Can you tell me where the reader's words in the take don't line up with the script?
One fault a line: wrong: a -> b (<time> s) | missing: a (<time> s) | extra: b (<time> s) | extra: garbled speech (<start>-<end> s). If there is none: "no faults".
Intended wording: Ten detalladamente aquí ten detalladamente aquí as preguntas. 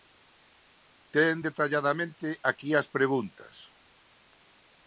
missing: ten detalladamente aquí (2.7 s)